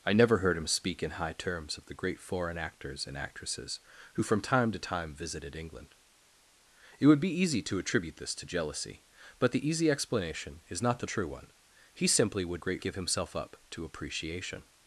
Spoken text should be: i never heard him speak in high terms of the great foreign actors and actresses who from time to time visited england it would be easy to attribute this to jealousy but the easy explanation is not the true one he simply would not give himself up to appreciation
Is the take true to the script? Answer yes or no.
no